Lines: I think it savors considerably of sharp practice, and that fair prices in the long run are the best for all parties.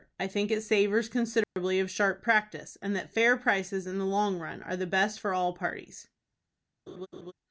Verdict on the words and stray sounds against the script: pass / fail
fail